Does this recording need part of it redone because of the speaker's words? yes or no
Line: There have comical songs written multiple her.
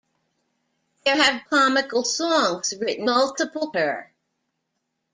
no